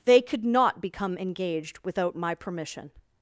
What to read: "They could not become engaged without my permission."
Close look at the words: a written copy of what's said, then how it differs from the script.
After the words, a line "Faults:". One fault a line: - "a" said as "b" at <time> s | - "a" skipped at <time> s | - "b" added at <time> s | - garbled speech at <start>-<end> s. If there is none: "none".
"They could not become engaged without my permission."
Faults:
none